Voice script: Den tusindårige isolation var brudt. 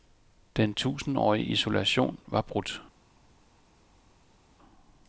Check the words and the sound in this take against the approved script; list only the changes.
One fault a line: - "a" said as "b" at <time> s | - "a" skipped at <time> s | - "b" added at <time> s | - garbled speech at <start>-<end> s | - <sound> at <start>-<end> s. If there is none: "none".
none